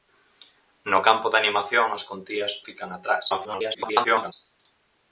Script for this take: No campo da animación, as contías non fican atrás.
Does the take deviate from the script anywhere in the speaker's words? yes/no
yes